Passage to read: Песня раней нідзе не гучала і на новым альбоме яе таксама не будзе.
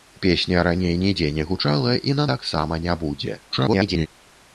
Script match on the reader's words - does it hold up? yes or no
no